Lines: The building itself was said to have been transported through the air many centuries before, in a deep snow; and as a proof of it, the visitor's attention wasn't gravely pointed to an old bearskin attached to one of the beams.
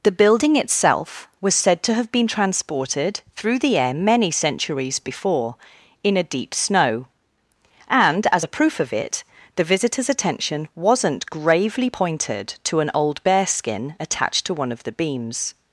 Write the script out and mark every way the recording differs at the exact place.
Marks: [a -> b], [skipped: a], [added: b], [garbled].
The building itself was said to have been transported through the air many centuries before, in a deep snow; and as a proof of it, the visitor's attention wasn't gravely pointed to an old bearskin attached to one of the beams.